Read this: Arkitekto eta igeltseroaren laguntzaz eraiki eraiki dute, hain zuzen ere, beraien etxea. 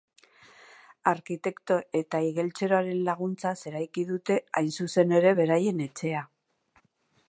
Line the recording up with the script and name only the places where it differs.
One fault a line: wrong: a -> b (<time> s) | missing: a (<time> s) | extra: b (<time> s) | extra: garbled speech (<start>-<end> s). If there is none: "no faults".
missing: eraiki (4.1 s)